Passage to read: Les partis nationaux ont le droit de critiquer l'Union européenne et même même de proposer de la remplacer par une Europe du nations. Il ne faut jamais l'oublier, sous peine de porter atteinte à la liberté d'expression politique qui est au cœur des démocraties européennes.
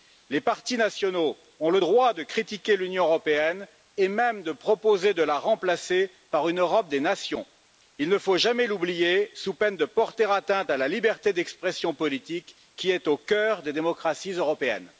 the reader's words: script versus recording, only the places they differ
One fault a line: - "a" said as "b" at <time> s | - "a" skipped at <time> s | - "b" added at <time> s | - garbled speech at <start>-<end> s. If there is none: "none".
- "même" skipped at 4.4 s
- "du" said as "des" at 6.9 s